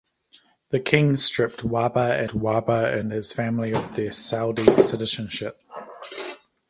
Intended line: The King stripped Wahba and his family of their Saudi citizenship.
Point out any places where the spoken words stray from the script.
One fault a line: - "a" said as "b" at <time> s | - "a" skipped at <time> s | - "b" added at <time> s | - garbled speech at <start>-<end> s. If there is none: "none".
- "Wahba" added at 2.3 s